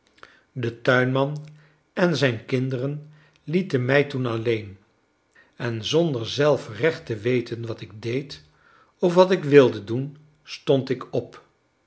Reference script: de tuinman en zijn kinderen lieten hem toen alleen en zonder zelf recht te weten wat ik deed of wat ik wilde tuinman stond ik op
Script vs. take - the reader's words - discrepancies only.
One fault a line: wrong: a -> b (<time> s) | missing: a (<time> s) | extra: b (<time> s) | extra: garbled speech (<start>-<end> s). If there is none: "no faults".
wrong: hem -> mij (3.9 s)
wrong: tuinman -> doen (9.8 s)